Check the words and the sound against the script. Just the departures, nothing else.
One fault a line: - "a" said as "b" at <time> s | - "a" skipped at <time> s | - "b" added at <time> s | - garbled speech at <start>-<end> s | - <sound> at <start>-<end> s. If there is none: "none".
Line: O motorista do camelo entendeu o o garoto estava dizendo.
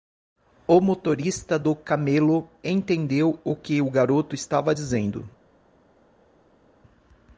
- "que" added at 3.5 s